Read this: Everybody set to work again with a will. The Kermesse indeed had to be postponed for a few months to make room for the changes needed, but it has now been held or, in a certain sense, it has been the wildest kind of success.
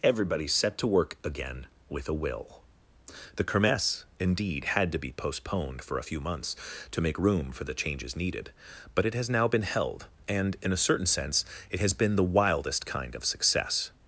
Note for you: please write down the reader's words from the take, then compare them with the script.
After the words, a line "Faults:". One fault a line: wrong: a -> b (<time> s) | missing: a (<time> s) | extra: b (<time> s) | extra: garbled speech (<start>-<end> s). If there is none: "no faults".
Everybody set to work again with a will. The Kermesse indeed had to be postponed for a few months to make room for the changes needed, but it has now been held and, in a certain sense, it has been the wildest kind of success.
Faults:
wrong: or -> and (10.3 s)